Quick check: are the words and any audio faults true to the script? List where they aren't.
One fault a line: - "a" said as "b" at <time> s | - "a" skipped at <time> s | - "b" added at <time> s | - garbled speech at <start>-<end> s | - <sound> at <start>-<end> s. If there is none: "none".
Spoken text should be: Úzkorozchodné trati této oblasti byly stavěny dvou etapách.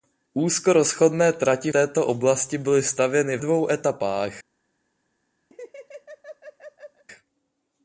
- laugh at 5.5-7.0 s